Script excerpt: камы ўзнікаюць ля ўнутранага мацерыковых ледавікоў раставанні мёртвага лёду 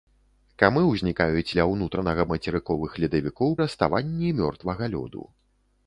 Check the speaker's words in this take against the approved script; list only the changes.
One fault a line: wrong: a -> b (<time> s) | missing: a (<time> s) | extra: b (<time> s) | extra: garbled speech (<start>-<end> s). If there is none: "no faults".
no faults